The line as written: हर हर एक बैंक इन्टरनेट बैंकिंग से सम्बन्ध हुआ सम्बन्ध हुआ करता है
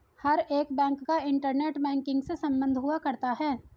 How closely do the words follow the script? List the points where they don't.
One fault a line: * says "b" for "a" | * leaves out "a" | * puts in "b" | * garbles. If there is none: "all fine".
* leaves out "हर"
* puts in "का"
* leaves out "सम्बन्ध हुआ"